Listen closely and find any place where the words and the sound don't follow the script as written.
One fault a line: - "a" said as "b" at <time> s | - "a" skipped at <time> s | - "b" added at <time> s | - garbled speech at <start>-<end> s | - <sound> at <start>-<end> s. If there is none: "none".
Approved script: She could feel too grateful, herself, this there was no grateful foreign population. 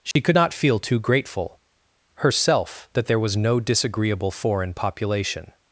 - dropout at 0.1-0.2 s
- "not" added at 0.3 s
- "this" said as "that" at 2.9 s
- "grateful" said as "disagreeable" at 3.6 s